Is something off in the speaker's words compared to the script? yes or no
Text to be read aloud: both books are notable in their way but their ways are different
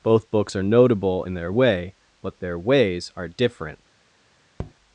no